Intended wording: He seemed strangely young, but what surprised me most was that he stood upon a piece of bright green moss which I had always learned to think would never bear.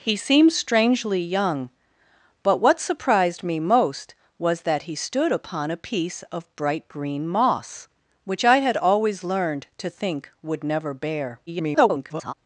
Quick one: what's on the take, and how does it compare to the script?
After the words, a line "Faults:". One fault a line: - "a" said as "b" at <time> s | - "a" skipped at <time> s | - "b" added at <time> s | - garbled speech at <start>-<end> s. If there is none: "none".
He seemed strangely young, but what surprised me most was that he stood upon a piece of bright green moss which I had always learned to think would never bear. [garbled]
Faults:
- garbled speech at 11.5-12.3 s